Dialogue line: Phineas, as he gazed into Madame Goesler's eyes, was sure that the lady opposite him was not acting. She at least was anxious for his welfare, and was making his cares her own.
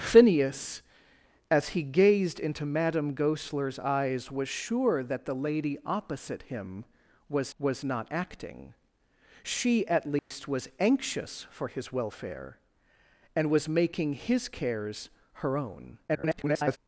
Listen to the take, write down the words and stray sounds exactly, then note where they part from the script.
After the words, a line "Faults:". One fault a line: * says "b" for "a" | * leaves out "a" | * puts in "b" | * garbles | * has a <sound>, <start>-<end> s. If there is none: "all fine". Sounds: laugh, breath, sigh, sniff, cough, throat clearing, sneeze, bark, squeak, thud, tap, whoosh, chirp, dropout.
Phineas, as he gazed into Madame Goesler's eyes, was sure that the lady opposite him was was not acting. She at least was anxious for his welfare, and was making his cares her own. [garbled]
Faults:
* puts in "was"
* has a dropout, 10.2-10.3 s
* garbles